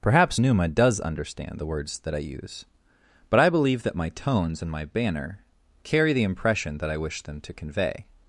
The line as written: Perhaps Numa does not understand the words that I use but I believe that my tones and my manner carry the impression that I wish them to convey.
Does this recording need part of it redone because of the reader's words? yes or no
yes